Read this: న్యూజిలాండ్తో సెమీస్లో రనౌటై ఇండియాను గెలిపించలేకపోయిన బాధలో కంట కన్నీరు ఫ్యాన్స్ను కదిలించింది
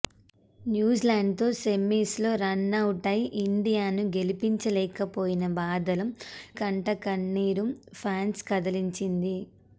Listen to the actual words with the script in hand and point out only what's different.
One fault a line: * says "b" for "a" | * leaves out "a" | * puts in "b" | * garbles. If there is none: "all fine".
all fine